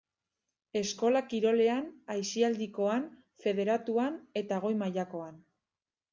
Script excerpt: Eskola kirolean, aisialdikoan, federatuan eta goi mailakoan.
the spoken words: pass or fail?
pass